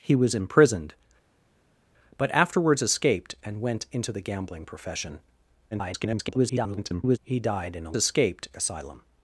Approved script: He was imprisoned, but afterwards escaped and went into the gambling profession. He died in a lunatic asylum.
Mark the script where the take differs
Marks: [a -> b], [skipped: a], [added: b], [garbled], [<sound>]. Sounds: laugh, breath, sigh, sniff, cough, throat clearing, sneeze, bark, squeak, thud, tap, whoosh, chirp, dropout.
He was imprisoned, but afterwards escaped and went into the gambling profession. [garbled] He died in a [lunatic -> escaped] asylum.